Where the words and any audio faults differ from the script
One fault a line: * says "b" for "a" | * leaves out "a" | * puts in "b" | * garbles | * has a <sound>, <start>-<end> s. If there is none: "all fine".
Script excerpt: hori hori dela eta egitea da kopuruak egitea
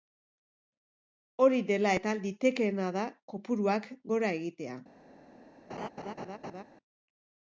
* leaves out "hori"
* says "litekeena" for "egitea"
* puts in "gora"
* has a laugh, 5.7-6.6 s